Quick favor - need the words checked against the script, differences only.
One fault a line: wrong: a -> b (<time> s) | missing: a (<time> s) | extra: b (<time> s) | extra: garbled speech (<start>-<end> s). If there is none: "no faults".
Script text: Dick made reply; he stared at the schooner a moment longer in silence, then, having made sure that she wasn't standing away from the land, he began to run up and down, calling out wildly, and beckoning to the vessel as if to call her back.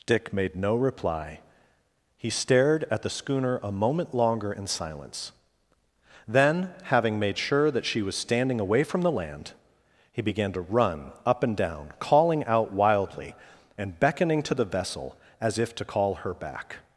extra: no (0.6 s)
wrong: wasn't -> was (8.0 s)